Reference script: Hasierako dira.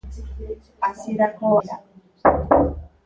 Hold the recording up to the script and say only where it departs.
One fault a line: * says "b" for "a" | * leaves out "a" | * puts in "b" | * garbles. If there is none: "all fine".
all fine